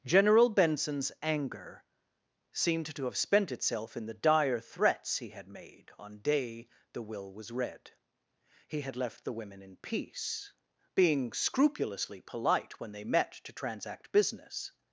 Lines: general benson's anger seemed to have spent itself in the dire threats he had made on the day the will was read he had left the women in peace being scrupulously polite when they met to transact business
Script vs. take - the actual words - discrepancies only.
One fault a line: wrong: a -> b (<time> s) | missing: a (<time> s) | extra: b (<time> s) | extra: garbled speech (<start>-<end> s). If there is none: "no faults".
missing: the (6.2 s)